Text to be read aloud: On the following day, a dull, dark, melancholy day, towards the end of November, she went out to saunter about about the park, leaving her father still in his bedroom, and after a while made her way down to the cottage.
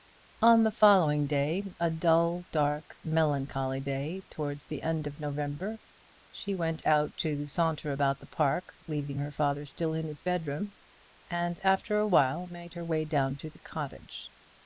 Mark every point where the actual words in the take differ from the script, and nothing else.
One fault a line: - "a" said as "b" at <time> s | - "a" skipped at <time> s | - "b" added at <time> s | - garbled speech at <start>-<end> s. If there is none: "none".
- "about" skipped at 8.2 s